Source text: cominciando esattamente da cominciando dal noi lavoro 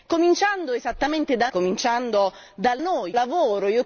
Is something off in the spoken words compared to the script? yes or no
no